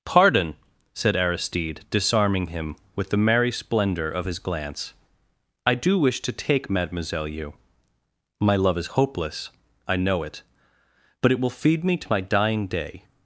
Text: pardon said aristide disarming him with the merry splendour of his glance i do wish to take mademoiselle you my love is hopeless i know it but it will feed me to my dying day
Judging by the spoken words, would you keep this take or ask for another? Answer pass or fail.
pass